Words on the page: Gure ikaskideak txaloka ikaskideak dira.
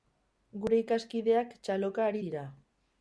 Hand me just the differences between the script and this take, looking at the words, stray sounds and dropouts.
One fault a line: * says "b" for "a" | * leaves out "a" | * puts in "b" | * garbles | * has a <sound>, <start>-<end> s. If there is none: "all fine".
* says "ari" for "ikaskideak"